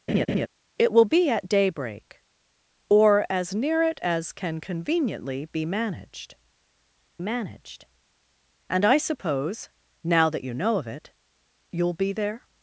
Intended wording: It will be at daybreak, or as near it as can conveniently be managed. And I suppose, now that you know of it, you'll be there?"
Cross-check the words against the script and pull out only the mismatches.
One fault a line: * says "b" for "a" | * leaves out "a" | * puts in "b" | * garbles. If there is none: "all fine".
* puts in "managed"